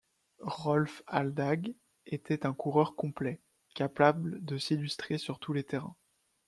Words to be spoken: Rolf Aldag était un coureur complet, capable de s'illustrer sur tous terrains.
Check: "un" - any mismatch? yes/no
no